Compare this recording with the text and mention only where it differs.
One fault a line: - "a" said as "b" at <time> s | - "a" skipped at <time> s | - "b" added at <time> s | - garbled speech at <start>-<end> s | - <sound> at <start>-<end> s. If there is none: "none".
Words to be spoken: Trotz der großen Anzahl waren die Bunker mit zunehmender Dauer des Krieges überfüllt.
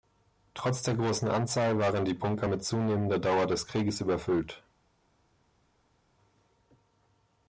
none